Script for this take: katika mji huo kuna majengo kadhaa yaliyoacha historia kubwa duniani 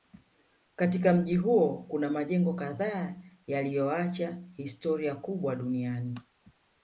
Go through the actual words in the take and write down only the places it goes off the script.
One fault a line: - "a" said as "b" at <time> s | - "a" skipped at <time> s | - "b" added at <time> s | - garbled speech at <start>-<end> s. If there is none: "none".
none